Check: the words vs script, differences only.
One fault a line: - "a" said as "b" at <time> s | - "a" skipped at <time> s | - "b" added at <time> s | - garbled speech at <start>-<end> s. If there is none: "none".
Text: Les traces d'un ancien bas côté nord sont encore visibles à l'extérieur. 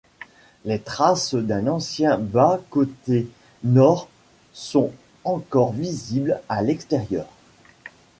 none